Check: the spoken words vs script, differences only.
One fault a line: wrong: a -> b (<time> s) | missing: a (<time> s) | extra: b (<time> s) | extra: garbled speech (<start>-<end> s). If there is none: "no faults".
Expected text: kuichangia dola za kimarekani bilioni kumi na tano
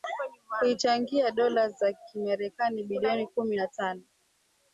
no faults